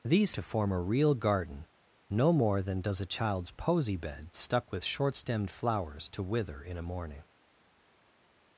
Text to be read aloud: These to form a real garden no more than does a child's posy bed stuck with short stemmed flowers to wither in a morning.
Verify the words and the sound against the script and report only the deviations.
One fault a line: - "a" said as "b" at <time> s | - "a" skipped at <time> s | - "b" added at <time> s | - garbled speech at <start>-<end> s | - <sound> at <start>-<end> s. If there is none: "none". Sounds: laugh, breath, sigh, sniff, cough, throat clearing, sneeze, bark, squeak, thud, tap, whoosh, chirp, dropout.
none